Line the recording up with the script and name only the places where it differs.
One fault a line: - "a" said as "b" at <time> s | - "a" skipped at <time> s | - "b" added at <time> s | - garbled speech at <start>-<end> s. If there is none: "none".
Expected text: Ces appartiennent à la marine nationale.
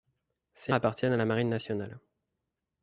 none